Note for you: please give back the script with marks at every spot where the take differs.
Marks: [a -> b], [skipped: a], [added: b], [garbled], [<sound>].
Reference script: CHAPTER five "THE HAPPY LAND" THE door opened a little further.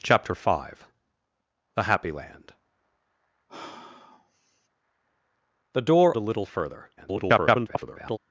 CHAPTER five "THE HAPPY LAND" [sigh] THE door [skipped: opened] a little further. [garbled]